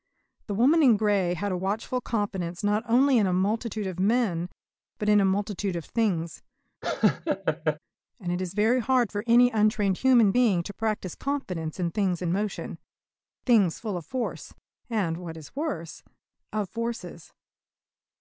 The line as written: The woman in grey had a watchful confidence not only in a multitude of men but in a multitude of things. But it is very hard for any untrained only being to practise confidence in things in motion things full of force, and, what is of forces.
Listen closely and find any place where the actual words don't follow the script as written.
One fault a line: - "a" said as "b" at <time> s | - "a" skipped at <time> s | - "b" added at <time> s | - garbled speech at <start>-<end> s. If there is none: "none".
- "But" said as "And" at 8.2 s
- "only" said as "human" at 10.0 s
- "worse" added at 15.6 s